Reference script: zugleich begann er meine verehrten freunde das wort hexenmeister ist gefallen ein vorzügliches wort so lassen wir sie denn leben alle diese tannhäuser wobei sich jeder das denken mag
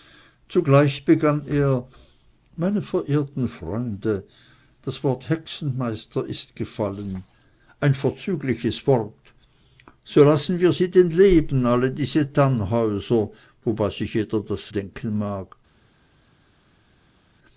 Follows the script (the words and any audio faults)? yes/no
yes